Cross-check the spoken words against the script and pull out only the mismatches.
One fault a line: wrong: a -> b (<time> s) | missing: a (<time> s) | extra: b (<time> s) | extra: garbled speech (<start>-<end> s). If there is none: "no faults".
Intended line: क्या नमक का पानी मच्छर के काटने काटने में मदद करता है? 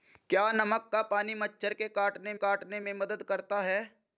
no faults